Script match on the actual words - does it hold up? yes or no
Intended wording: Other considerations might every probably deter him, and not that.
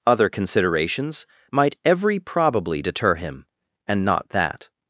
yes